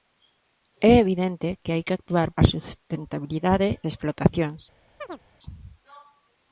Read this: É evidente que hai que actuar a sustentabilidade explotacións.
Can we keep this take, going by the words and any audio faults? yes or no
no